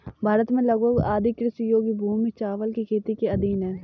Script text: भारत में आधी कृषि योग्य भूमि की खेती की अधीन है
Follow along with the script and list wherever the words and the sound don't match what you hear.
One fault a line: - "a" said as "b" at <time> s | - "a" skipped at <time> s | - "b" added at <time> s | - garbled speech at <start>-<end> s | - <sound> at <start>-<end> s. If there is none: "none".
- "लगभग" added at 0.6 s
- "चावल" added at 2.4 s
- "की" said as "के" at 3.1 s